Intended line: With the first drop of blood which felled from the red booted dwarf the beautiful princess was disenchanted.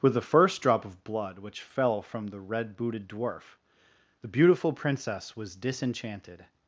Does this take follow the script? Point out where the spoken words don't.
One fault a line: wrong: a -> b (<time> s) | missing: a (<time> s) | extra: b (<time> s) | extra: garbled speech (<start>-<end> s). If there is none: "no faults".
wrong: felled -> fell (1.6 s)